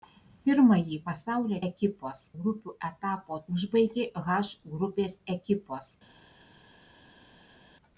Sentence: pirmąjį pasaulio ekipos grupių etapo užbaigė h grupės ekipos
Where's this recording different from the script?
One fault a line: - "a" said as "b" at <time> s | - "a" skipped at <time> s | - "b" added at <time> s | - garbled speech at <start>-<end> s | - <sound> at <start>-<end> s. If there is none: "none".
none